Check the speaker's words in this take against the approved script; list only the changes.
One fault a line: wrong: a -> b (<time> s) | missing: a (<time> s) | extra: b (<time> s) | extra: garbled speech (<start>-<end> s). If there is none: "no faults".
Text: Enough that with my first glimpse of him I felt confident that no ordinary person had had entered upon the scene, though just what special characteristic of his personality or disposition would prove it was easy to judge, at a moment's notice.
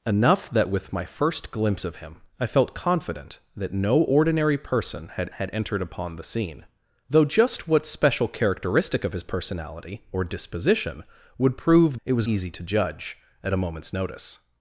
no faults